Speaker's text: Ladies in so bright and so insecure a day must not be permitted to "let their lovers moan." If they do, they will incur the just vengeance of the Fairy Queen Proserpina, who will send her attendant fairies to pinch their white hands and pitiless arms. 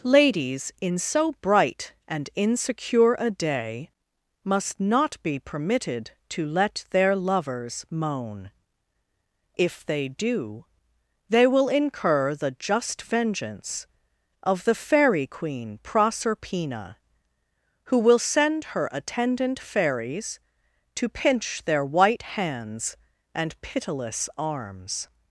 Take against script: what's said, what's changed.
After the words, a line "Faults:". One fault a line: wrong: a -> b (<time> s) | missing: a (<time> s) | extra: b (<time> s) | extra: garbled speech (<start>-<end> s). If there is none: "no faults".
Ladies in so bright and insecure a day must not be permitted to "let their lovers moan." If they do, they will incur the just vengeance of the Fairy Queen Proserpina, who will send her attendant fairies to pinch their white hands and pitiless arms.
Faults:
missing: so (2.3 s)